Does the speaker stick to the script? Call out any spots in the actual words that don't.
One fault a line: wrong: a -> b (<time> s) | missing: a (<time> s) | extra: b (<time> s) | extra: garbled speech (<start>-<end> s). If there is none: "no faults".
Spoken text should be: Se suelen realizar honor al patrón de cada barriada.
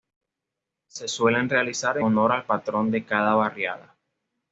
no faults